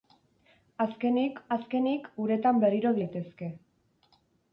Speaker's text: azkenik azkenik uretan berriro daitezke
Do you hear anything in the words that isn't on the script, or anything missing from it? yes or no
no